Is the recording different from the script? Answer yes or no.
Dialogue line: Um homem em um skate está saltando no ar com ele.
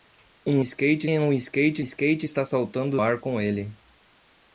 yes